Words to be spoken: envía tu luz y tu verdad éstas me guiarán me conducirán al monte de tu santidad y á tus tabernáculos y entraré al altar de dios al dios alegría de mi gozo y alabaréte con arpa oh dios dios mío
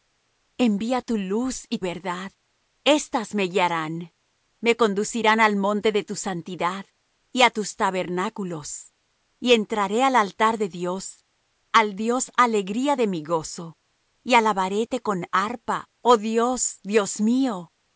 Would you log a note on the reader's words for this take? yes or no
yes